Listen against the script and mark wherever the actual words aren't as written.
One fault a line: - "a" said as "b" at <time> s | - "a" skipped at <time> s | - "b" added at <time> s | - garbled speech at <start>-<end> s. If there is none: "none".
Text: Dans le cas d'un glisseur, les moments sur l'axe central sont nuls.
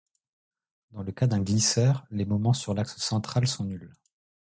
none